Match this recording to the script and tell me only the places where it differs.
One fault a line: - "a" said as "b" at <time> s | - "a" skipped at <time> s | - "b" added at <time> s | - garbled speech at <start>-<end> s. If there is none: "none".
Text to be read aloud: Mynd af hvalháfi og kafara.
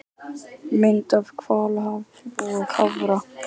none